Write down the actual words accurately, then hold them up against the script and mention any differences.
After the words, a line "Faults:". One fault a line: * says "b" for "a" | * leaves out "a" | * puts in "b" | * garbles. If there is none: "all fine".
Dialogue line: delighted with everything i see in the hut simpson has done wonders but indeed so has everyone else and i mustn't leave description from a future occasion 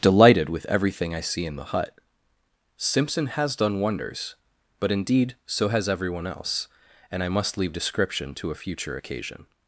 delighted with everything i see in the hut simpson has done wonders but indeed so has everyone else and i must leave description to a future occasion
Faults:
* says "must" for "mustn't"
* says "to" for "from"